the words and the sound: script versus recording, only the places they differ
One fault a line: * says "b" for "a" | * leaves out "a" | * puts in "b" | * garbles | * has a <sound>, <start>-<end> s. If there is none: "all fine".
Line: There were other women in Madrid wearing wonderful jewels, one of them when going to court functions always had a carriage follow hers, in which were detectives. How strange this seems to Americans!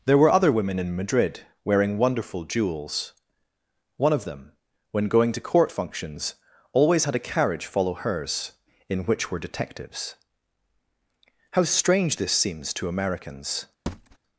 * has a thud, 13.9-14.2 s